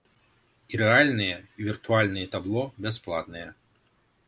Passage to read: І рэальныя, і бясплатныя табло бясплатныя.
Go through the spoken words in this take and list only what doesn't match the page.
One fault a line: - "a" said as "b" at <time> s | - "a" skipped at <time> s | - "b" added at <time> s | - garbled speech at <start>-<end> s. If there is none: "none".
- "бясплатныя" said as "віртуальныя" at 1.7 s